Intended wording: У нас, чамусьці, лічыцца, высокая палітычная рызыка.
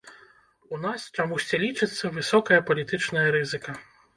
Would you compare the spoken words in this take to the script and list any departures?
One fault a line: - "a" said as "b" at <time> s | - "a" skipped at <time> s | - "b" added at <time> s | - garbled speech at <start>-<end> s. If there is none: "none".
none